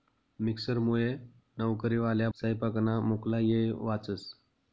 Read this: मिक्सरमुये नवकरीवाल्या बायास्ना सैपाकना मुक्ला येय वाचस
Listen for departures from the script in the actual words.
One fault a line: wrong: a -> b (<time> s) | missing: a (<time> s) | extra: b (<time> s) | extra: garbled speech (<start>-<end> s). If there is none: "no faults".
missing: बायास्ना (2.3 s)